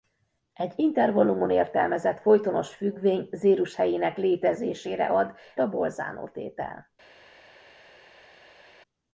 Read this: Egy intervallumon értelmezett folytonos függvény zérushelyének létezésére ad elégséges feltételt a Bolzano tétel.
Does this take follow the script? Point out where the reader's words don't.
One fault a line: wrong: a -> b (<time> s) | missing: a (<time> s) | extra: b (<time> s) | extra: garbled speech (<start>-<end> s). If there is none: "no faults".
missing: elégséges feltételt (5.3 s)